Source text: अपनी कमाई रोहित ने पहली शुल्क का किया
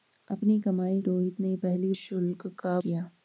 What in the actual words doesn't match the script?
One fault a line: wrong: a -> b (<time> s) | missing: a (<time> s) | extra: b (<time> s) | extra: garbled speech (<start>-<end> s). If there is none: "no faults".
no faults